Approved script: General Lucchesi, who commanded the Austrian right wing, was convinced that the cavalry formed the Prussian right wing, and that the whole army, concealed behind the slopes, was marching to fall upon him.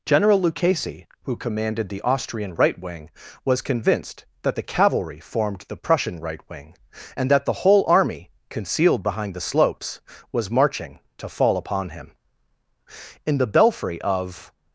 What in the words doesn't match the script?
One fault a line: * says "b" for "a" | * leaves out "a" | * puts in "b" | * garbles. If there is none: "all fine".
* puts in "In the belfry of"